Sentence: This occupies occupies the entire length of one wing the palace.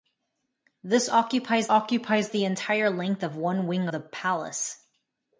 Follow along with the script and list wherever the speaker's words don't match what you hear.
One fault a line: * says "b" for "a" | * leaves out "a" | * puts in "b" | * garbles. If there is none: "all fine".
all fine